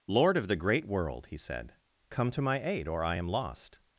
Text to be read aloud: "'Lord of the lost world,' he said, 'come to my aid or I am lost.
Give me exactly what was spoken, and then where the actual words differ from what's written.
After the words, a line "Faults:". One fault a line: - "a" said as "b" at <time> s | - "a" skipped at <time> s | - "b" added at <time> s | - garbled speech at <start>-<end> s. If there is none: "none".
"'Lord of the great world,' he said, 'come to my aid or I am lost.
Faults:
- "lost" said as "great" at 0.6 s